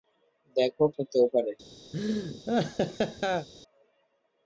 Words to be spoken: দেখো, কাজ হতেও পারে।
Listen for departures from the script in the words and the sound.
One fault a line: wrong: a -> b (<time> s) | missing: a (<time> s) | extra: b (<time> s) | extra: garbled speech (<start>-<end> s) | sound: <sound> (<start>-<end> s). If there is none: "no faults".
missing: কাজ (0.8 s)
sound: laugh (1.9-3.5 s)